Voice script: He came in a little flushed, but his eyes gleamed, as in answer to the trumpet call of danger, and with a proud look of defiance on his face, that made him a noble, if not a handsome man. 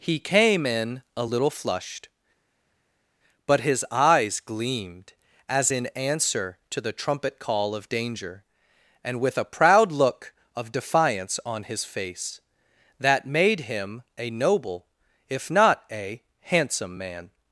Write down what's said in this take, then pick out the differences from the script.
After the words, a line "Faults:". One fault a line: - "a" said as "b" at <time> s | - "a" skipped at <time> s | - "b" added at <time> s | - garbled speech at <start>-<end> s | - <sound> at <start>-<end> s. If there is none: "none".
He came in a little flushed, but his eyes gleamed, as in answer to the trumpet call of danger, and with a proud look of defiance on his face, that made him a noble, if not a handsome man.
Faults:
none